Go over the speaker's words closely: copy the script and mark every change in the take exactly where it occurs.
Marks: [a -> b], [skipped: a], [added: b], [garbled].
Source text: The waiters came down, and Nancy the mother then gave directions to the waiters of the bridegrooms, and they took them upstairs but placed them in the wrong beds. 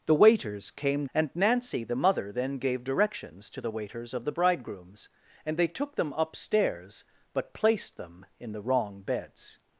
The waiters came [skipped: down,] and Nancy the mother then gave directions to the waiters of the bridegrooms, and they took them upstairs but placed them in the wrong beds.